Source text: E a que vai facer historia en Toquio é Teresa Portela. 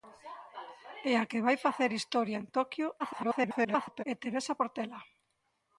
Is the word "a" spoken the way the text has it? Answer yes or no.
yes